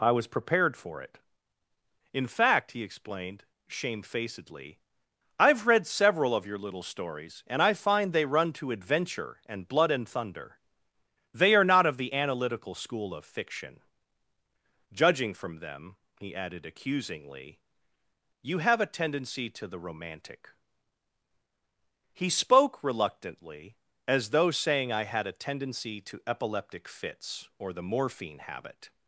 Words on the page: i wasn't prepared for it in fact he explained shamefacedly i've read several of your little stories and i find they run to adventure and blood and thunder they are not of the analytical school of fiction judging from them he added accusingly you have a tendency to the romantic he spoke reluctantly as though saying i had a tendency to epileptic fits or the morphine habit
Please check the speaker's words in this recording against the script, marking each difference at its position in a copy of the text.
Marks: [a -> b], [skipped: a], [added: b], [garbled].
i [wasn't -> was] prepared for it in fact he explained shamefacedly i've read several of your little stories and i find they run to adventure and blood and thunder they are not of the analytical school of fiction judging from them he added accusingly you have a tendency to the romantic he spoke reluctantly as though saying i had a tendency to epileptic fits or the morphine habit